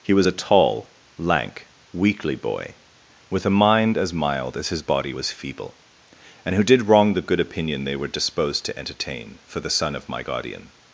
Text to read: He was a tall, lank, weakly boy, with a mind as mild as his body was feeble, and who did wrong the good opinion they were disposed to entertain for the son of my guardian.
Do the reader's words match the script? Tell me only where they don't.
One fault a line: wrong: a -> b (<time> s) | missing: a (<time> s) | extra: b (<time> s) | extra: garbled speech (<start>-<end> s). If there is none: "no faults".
no faults